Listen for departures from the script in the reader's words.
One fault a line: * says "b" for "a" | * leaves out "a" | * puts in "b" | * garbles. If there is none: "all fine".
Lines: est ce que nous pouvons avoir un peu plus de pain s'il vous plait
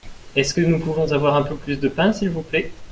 all fine